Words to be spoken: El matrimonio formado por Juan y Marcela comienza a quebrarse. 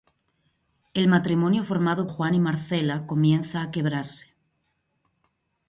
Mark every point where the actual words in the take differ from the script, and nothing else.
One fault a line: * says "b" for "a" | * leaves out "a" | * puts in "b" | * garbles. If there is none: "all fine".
* leaves out "por"